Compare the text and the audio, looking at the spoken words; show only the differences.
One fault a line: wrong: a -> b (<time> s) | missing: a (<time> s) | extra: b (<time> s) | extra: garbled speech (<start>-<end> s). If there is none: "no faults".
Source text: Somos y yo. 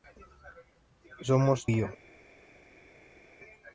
no faults